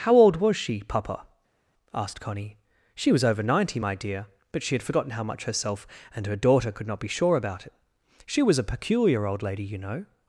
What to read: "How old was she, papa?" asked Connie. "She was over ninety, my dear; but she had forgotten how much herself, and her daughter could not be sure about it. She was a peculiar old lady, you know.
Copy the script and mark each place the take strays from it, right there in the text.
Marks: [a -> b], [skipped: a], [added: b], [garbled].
"How old was she, papa?" asked Connie. "She was over ninety, my dear; but she had forgotten how much herself, and her daughter could not be sure about it. She was a peculiar old lady, you know.